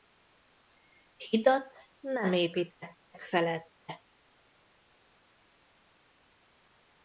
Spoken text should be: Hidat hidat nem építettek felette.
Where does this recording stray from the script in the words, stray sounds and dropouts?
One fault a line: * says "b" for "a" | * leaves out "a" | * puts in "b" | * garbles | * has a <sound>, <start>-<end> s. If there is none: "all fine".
* leaves out "hidat"